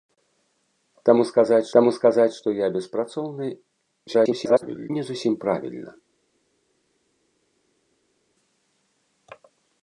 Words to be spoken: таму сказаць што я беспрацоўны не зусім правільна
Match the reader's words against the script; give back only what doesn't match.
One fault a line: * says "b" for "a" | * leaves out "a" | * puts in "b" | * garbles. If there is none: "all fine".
* puts in "таму сказаць"
* garbles